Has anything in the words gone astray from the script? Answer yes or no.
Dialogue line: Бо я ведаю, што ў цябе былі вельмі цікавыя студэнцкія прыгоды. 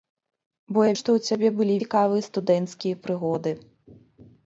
yes